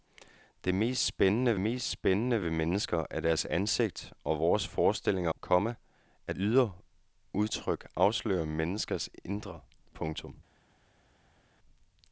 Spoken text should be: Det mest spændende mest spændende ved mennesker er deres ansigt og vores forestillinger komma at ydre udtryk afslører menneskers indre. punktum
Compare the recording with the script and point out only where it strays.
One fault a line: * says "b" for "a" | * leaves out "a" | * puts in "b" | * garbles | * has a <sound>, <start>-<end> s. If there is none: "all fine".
all fine